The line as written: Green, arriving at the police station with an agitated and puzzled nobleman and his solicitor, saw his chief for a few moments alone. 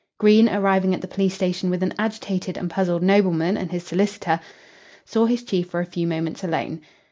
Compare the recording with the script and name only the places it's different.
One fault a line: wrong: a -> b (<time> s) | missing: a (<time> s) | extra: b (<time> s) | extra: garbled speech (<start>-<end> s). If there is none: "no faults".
no faults